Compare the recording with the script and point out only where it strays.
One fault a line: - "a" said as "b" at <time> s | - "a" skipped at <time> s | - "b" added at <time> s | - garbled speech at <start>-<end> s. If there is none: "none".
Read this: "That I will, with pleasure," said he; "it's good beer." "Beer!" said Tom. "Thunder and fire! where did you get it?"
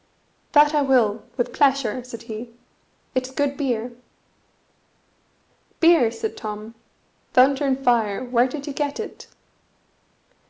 none